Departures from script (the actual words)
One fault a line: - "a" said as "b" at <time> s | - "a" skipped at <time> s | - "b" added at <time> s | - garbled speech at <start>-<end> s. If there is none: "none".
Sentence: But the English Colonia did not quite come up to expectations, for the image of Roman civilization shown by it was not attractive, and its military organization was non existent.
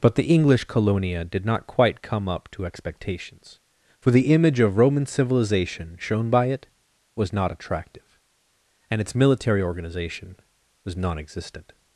none